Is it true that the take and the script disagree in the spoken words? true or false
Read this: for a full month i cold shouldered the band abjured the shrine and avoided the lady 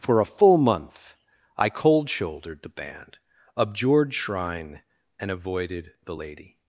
true